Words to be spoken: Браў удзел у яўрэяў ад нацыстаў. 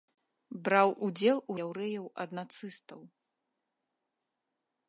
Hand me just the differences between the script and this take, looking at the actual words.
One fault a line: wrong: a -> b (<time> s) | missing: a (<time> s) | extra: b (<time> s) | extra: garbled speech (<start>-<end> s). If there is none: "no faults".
no faults